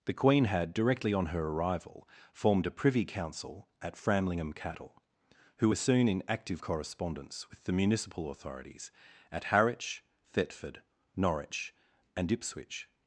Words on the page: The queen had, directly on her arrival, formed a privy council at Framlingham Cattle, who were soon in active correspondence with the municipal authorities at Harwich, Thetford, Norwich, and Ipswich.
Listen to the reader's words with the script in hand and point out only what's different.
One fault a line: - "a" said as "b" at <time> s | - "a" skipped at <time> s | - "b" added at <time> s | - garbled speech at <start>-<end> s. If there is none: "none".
none